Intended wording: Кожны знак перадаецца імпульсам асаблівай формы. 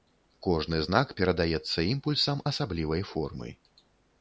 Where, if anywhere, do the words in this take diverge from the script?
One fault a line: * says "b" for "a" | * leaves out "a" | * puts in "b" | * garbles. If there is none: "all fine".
all fine